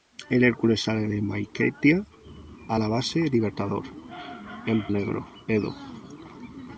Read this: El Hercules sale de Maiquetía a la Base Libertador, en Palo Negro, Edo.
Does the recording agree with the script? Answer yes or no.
no